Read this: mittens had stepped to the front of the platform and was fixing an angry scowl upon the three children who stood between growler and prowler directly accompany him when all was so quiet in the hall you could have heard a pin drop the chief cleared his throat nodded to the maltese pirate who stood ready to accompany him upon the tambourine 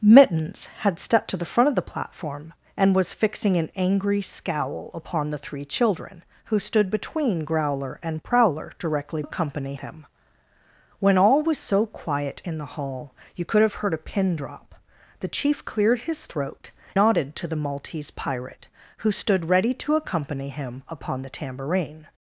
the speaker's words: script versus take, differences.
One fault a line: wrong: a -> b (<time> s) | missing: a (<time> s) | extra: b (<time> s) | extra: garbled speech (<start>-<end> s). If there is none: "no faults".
no faults